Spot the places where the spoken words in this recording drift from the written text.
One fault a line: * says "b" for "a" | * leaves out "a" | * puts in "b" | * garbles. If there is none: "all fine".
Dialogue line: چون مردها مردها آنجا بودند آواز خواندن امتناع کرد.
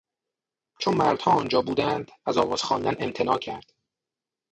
* leaves out "مردها"
* puts in "از"